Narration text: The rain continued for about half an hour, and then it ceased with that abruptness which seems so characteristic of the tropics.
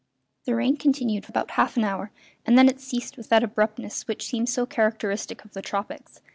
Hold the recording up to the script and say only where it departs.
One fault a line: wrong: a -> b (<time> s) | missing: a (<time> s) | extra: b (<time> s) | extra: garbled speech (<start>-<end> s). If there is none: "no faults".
missing: for (1.3 s)